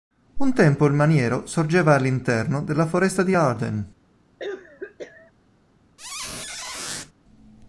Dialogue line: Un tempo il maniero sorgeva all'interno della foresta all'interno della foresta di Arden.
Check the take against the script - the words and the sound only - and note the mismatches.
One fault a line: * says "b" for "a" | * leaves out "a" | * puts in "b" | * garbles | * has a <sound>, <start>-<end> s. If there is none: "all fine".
* leaves out "all'interno della foresta"
* has a cough, 4.4-5.3 s
* has a squeak, 6.0-7.1 s